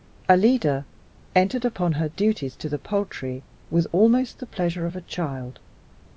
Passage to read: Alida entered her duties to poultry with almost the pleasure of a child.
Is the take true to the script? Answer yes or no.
no